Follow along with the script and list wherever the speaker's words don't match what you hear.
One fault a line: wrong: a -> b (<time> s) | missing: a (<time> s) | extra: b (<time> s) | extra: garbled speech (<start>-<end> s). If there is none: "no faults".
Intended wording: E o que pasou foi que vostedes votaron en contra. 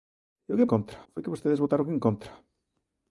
wrong: pasou -> contra (0.7 s)